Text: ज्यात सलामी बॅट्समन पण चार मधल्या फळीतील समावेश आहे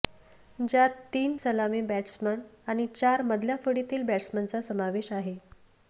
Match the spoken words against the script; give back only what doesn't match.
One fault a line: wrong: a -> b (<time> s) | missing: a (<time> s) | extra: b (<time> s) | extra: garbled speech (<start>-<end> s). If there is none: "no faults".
extra: तीन (1.1 s)
wrong: पण -> आणि (2.7 s)
extra: बॅट्समनचा (4.0 s)